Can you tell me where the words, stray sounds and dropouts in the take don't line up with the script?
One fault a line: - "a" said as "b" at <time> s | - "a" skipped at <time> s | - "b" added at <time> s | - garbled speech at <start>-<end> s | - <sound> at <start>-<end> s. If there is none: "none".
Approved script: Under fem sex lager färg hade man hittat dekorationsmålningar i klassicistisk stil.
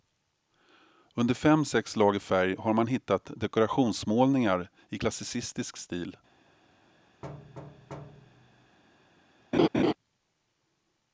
- "hade" said as "har" at 2.6 s
- thud at 7.2-8.8 s
- laugh at 9.5-9.9 s